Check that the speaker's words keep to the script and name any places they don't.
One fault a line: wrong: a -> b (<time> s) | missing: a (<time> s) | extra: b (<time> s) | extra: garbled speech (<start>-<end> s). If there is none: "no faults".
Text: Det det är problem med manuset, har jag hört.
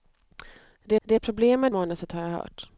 no faults